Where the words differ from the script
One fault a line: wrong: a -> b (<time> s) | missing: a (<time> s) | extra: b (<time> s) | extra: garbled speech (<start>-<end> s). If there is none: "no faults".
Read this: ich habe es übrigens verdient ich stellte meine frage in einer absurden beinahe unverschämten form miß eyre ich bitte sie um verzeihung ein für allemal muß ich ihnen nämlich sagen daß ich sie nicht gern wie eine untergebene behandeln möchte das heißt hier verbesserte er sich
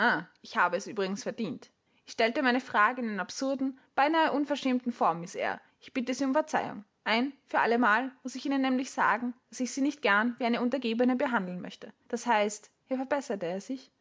no faults